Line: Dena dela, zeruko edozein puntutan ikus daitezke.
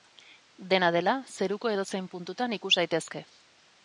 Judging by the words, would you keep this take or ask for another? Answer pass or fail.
pass